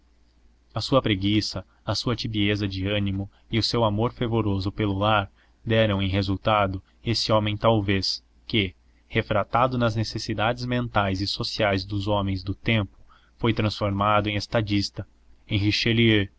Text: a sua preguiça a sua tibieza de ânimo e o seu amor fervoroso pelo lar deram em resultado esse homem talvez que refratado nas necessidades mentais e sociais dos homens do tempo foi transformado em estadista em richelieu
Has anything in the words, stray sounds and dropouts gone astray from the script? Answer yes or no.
no